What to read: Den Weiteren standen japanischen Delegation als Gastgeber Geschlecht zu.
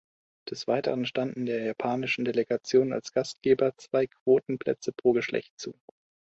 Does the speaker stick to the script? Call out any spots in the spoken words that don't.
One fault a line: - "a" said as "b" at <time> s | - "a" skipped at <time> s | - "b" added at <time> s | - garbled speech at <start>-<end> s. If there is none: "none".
- "Den" said as "Des" at 0.5 s
- "der" added at 1.4 s
- "zwei Quotenplätze pro" added at 3.8 s